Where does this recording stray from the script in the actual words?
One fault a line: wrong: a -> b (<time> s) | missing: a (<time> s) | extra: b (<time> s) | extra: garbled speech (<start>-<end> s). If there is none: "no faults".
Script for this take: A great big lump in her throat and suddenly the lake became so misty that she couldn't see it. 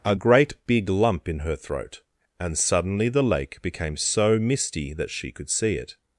wrong: couldn't -> could (5.3 s)